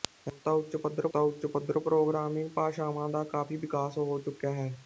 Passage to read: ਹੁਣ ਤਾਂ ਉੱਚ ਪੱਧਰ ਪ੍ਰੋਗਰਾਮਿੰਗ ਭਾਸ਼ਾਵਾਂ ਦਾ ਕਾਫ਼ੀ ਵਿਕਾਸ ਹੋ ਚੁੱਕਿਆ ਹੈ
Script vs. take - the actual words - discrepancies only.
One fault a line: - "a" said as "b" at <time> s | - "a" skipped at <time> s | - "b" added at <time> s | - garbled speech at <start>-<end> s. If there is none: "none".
- "ਤਾਂ ਉੱਚ ਪੱਧਰ" added at 1.1 s